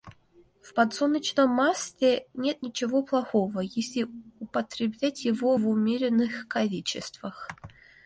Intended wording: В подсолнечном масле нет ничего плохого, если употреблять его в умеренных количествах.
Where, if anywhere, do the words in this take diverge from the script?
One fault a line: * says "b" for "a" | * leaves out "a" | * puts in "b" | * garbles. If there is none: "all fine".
all fine